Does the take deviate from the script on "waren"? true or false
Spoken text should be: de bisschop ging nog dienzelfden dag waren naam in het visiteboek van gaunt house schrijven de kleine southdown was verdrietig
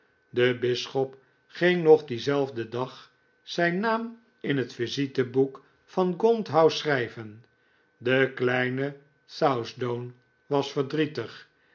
true